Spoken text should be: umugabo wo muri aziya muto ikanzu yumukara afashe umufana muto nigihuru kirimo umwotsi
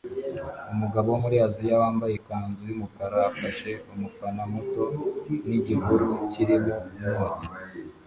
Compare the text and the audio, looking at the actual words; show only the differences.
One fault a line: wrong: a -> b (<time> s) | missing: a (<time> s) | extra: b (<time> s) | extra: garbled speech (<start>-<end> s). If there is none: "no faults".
wrong: muto -> wambaye (1.8 s)